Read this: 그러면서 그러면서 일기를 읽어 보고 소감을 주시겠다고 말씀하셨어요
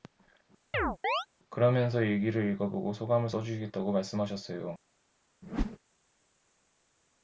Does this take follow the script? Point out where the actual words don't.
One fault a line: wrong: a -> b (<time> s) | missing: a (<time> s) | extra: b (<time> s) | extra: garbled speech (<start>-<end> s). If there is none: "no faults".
missing: 그러면서 (2.0 s)
extra: 써 (3.3 s)